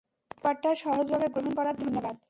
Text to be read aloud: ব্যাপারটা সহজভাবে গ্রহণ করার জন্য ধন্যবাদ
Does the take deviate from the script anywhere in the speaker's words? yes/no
yes